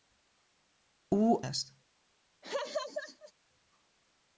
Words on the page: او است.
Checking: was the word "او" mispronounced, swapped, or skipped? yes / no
no